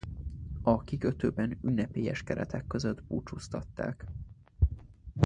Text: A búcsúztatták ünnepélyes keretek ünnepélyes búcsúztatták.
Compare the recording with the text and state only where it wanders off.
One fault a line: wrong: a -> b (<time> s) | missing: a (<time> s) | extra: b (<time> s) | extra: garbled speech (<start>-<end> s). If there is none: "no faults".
wrong: búcsúztatták -> kikötőben (0.8 s)
wrong: ünnepélyes -> között (2.7 s)